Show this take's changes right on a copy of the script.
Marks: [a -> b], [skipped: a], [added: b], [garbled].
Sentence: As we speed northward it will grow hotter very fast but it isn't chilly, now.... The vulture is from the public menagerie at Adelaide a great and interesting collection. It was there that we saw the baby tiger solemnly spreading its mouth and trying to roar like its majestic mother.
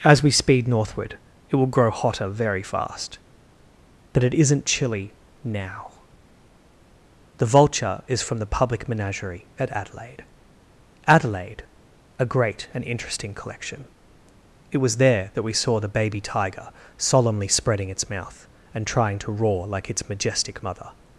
As we speed northward it will grow hotter very fast but it isn't chilly, now.... The vulture is from the public menagerie at Adelaide [added: Adelaide] a great and interesting collection. It was there that we saw the baby tiger solemnly spreading its mouth and trying to roar like its majestic mother.